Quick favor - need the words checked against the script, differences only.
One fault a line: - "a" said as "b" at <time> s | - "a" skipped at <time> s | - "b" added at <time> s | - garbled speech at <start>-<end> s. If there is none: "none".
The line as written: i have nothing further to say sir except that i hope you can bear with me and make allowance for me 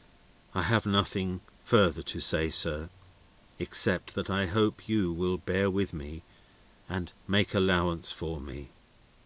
- "can" said as "will" at 5.1 s